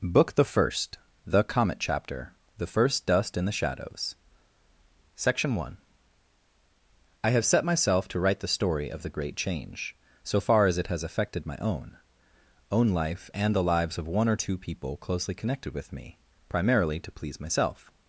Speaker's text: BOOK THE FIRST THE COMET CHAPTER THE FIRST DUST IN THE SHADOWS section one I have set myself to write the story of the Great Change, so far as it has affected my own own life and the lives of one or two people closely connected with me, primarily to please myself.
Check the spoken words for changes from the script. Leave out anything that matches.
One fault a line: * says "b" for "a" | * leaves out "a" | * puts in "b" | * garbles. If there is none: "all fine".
all fine